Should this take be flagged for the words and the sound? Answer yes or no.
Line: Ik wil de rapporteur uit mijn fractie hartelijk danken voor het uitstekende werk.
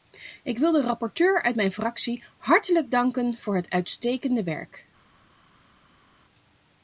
no